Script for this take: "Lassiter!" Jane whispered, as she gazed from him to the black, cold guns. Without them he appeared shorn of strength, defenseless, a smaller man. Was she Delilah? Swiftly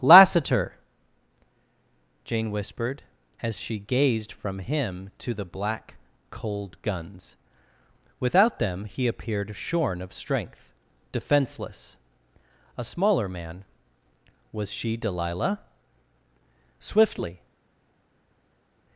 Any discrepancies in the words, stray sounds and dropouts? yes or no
no